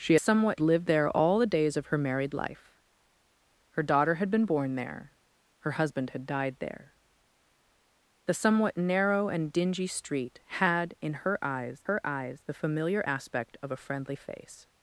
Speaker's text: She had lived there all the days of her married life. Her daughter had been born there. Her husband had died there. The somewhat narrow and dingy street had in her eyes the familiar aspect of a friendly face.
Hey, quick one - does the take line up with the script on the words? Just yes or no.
no